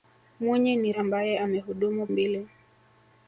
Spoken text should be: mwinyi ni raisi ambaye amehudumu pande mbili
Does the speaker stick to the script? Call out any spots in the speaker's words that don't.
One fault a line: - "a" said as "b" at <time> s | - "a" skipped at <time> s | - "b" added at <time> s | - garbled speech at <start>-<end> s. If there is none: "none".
- "raisi" skipped at 0.9 s
- "pande" skipped at 2.1 s